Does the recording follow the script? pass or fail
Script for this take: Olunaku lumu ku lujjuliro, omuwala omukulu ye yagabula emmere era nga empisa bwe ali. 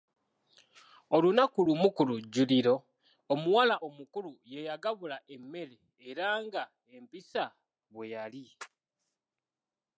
fail